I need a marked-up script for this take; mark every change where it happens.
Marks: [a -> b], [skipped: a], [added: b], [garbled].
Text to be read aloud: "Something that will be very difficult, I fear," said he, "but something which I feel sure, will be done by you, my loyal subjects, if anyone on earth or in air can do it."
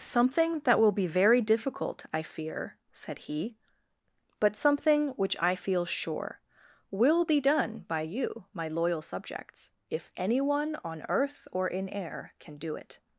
"Something that will be very difficult, I fear," said he, "but something which I feel sure, will be done by you, my loyal subjects, if anyone on earth or in air can do it."